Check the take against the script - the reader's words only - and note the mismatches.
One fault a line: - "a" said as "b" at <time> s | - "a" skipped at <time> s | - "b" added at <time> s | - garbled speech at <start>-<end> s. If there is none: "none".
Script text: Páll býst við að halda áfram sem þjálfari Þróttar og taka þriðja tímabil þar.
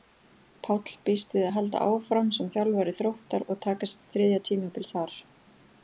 - "sitt" added at 3.9 s